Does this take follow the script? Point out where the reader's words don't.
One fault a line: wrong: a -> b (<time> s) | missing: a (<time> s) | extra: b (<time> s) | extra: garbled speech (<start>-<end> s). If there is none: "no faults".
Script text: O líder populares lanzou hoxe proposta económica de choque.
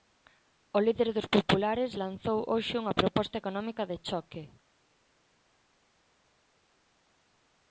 extra: dos (1.2 s)
extra: unha (2.8 s)